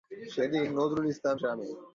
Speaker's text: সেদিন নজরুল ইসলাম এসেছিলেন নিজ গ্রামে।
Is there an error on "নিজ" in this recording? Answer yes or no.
yes